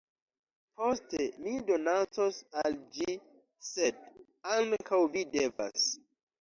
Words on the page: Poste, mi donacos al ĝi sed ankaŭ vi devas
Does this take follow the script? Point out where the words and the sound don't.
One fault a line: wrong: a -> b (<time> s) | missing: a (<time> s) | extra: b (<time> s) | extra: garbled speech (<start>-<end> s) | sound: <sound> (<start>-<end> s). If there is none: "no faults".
sound: dropout (5.5-5.6 s)